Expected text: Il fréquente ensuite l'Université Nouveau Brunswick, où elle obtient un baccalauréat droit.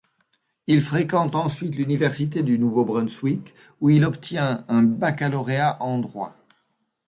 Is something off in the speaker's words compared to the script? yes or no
yes